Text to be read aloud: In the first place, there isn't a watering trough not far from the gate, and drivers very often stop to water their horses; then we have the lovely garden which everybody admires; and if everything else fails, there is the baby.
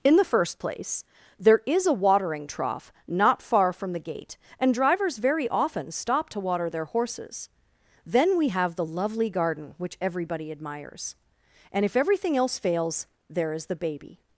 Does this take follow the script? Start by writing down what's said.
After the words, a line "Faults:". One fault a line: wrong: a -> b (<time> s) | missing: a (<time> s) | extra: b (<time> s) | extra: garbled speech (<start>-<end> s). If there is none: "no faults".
In the first place, there is a watering trough not far from the gate, and drivers very often stop to water their horses; then we have the lovely garden which everybody admires; and if everything else fails, there is the baby.
Faults:
wrong: isn't -> is (1.6 s)